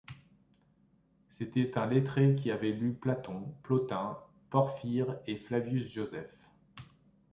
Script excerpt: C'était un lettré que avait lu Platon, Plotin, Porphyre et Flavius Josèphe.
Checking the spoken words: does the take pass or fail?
fail